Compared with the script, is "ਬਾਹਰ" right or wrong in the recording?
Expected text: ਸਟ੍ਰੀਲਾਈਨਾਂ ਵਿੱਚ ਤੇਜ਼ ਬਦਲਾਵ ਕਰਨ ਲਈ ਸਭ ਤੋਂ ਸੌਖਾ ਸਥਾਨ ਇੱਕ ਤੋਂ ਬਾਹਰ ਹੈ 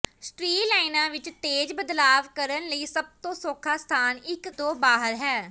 right